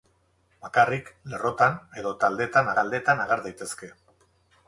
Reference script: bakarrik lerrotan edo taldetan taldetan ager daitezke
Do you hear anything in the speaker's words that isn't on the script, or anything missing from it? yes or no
no